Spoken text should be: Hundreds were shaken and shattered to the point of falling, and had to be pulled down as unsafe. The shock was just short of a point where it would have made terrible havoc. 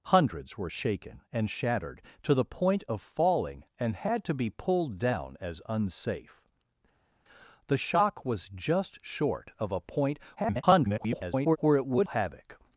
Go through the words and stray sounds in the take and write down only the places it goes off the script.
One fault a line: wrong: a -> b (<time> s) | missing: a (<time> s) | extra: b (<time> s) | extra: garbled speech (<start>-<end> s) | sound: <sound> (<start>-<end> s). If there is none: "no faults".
extra: garbled speech (10.4-11.6 s)
missing: have made terrible (12.1 s)